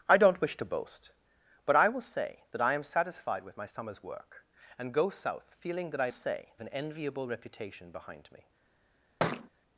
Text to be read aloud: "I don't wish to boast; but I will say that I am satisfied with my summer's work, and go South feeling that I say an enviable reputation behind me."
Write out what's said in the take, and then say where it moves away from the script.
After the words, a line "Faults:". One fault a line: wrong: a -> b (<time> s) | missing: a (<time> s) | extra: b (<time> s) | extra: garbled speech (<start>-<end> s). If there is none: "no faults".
"I don't wish to boast; but I will say that I am satisfied with my summer's work, and go South feeling that I say an enviable reputation behind me."
Faults:
no faults